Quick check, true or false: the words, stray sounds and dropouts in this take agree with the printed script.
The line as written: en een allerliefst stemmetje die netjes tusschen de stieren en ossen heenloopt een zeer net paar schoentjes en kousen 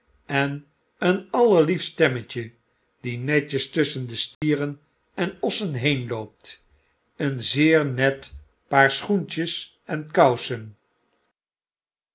false